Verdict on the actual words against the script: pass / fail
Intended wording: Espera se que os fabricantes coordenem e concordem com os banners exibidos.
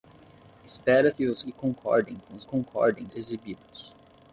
fail